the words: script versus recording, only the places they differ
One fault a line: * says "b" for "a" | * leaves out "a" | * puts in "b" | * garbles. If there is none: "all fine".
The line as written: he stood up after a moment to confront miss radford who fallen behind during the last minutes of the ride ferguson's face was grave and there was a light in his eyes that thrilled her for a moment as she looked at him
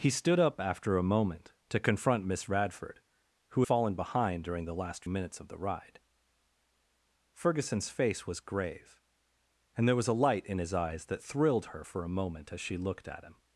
all fine